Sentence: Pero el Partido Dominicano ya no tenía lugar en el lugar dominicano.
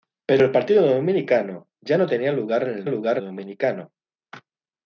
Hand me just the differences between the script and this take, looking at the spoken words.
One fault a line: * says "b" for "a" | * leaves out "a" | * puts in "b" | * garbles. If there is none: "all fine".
all fine